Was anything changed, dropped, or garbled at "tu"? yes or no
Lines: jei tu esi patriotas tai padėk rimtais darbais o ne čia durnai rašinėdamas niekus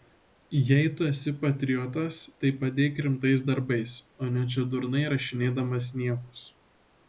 no